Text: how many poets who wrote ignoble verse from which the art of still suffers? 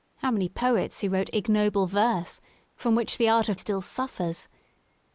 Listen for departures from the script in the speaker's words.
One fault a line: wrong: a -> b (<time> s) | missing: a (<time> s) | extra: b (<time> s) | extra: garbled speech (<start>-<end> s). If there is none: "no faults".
no faults